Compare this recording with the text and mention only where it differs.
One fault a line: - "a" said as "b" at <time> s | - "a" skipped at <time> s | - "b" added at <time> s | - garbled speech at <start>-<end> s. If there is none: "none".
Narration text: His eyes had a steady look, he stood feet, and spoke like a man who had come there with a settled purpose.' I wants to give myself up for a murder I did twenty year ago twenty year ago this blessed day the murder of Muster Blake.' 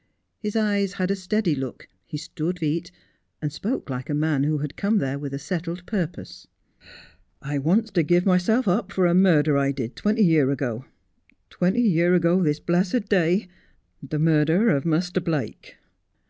none